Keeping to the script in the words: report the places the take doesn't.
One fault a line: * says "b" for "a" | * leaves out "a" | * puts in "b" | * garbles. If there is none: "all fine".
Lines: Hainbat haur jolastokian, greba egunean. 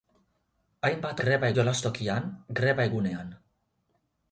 * says "greba" for "haur"